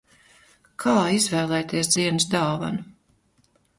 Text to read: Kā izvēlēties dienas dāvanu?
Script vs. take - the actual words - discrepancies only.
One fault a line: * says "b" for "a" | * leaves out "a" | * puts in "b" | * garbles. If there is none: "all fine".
all fine